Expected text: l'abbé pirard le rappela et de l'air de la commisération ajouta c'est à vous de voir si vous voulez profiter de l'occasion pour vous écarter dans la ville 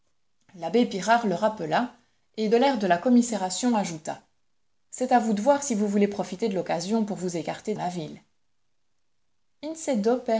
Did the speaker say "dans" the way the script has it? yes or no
no